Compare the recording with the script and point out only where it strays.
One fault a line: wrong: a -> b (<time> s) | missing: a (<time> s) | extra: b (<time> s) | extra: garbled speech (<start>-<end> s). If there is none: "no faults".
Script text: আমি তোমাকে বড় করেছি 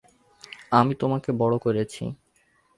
no faults